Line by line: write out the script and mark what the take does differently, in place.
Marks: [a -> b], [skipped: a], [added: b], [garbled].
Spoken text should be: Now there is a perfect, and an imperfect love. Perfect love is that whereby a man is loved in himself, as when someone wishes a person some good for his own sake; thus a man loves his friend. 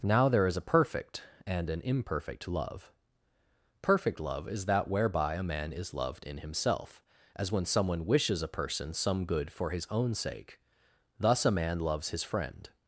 Now there is a perfect, and an imperfect love. Perfect love is that whereby a man is loved in himself, as when someone wishes a person some good for his own sake; thus a man loves his friend.